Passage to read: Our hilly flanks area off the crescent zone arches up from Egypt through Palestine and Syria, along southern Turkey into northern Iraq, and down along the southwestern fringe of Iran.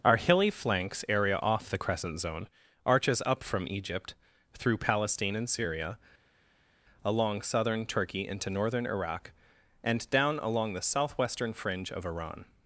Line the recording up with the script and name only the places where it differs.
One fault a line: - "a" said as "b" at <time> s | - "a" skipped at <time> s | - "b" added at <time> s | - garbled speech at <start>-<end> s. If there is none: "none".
none